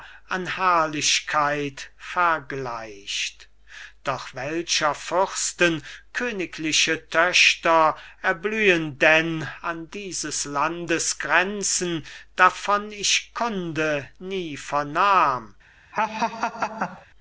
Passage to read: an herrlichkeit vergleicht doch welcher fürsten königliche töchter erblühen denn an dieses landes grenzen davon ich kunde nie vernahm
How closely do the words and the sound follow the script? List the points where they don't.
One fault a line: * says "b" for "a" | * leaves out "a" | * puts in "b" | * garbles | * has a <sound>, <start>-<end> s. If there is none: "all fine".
* has a laugh, 15.9-17.1 s